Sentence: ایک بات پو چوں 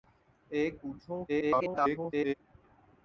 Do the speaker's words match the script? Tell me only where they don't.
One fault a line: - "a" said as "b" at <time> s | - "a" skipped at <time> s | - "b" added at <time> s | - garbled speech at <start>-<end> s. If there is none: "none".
- "بات" skipped at 0.7 s
- garbled speech at 1.3-2.3 s